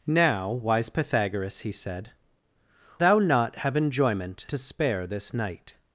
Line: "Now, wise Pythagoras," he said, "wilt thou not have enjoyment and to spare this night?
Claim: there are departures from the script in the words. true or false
true